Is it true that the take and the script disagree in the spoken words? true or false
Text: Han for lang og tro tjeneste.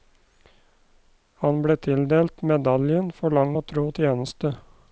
true